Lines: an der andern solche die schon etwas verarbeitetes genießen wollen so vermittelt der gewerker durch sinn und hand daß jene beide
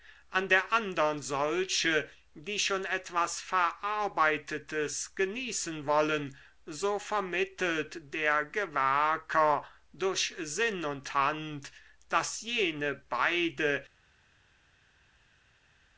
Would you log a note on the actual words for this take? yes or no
no